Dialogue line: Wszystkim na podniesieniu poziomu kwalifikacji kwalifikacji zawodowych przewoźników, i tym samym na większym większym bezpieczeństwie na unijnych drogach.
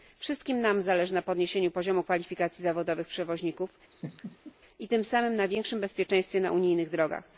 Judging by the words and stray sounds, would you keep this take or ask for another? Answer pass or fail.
fail